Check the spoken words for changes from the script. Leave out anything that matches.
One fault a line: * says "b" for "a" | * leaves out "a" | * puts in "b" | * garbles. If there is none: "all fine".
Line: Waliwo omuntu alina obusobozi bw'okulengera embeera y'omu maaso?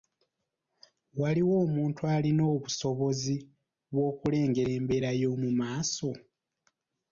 all fine